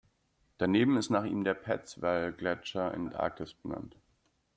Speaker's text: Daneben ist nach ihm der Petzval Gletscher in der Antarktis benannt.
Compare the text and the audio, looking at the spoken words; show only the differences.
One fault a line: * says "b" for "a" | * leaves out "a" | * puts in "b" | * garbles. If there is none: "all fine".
* leaves out "der"